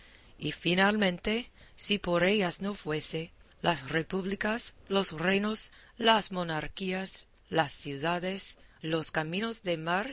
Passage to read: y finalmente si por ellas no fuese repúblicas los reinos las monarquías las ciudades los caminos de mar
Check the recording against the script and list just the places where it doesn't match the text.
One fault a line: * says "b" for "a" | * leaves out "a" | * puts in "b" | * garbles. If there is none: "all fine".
* puts in "las"